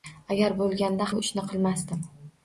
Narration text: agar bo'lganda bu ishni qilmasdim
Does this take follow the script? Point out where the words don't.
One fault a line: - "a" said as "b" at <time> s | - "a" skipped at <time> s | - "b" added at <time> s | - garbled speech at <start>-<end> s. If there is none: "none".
none